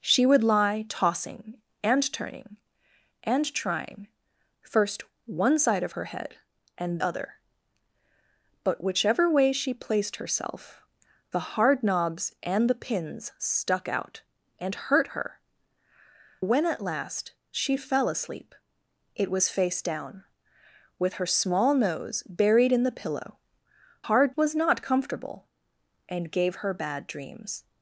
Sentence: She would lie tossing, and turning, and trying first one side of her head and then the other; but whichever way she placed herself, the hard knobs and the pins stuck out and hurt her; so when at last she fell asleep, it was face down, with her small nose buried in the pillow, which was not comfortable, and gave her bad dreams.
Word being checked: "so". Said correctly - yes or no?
no